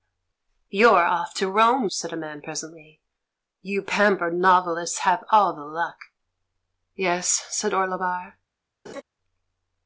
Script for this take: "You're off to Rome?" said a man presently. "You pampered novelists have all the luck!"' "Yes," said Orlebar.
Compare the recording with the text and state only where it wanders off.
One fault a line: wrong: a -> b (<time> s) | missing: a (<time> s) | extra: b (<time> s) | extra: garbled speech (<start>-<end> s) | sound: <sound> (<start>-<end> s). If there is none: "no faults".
sound: laugh (8.9-9.0 s)